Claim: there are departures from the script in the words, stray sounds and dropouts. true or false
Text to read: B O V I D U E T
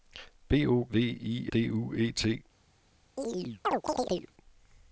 true